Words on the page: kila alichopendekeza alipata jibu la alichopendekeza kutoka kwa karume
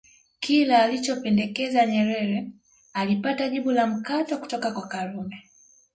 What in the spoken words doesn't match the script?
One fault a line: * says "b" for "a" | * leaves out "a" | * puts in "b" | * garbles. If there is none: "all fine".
* puts in "nyerere"
* says "mkato" for "alichopendekeza"